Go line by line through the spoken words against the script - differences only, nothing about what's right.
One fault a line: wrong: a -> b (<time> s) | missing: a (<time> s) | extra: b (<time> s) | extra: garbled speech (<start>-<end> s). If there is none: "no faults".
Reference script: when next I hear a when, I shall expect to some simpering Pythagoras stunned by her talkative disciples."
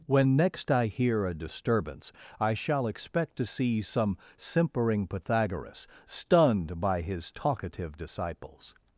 wrong: when -> disturbance (1.3 s)
extra: see (3.5 s)
wrong: her -> his (7.0 s)